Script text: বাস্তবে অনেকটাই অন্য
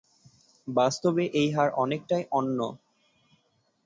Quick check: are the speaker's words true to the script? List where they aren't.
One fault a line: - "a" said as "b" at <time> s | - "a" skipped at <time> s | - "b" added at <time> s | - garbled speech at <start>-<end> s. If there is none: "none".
- "এই হার" added at 1.3 s